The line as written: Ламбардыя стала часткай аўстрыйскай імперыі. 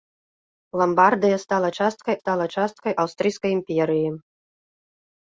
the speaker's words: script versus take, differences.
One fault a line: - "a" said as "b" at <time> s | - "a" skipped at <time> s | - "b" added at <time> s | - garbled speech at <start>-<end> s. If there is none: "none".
- "стала часткай" added at 2.2 s